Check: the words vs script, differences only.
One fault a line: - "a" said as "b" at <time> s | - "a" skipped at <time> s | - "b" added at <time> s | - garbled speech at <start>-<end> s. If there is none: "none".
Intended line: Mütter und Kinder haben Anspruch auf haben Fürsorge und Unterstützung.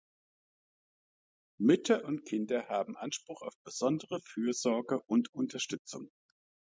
- "haben" said as "besondere" at 3.6 s